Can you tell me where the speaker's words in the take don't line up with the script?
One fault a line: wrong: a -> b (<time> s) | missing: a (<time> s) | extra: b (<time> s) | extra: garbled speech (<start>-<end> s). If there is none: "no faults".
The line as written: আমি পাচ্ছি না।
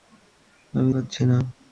no faults